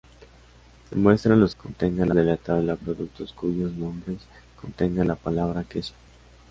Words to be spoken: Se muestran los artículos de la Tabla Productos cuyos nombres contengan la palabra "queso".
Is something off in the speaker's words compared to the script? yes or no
yes